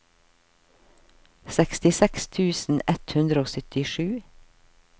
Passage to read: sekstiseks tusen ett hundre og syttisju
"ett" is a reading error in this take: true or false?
false